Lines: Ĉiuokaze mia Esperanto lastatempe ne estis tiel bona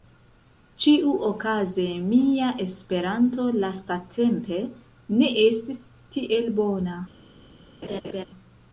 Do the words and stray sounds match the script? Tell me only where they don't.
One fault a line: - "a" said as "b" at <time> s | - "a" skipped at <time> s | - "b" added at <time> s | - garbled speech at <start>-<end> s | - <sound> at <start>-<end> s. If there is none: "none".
- laugh at 7.8-8.3 s